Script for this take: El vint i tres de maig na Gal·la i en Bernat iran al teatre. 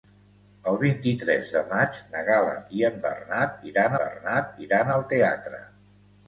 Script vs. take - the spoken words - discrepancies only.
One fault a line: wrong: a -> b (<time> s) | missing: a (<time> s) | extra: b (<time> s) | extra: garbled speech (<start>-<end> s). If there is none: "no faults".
extra: Bernat iran (4.0 s)